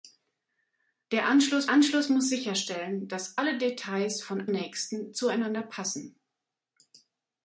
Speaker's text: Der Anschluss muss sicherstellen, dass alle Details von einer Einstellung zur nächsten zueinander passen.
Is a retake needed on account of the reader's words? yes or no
yes